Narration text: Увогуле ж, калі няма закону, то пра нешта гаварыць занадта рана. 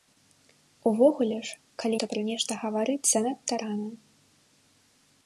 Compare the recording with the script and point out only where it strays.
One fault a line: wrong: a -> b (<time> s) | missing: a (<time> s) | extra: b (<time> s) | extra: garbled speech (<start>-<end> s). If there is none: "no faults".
missing: няма закону (2.0 s)